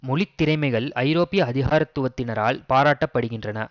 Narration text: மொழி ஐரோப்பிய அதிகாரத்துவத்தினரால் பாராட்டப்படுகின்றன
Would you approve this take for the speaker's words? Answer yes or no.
no